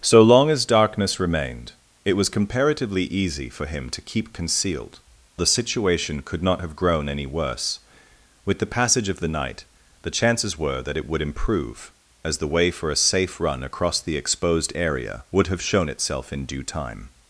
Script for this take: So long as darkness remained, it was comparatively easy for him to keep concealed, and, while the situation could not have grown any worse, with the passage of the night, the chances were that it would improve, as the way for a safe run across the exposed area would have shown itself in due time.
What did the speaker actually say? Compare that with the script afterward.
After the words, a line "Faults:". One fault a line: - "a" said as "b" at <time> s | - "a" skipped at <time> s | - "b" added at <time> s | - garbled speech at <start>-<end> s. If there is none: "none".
So long as darkness remained, it was comparatively easy for him to keep concealed, the situation could not have grown any worse, with the passage of the night, the chances were that it would improve, as the way for a safe run across the exposed area would have shown itself in due time.
Faults:
- "and while" skipped at 5.0 s